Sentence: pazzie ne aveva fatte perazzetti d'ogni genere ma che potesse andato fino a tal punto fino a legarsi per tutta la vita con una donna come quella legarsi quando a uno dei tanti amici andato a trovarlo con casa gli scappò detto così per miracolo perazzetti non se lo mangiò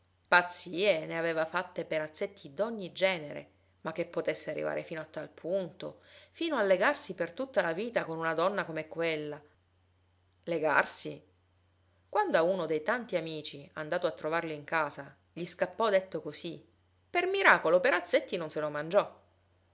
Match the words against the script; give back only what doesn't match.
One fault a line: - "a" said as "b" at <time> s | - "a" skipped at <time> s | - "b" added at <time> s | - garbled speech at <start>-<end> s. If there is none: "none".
- "andato" said as "arrivare" at 4.5 s
- "con" said as "in" at 14.5 s